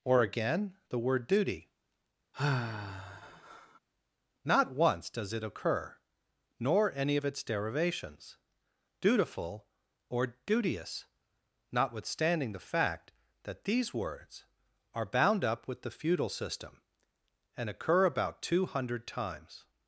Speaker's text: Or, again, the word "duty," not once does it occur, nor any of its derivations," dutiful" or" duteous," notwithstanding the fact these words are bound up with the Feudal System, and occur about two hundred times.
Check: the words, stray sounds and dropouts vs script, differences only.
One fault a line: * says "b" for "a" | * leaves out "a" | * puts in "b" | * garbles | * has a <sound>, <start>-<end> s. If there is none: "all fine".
* has a sigh, 2.3-3.8 s
* puts in "that"